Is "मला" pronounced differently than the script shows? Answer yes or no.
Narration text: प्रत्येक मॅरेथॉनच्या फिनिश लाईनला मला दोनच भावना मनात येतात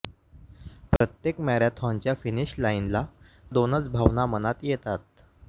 yes